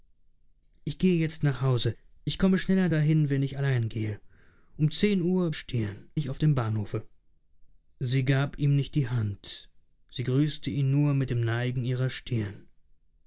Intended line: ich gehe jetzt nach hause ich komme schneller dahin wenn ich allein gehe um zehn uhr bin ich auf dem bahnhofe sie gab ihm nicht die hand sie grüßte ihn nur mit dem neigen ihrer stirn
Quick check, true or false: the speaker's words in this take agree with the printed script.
false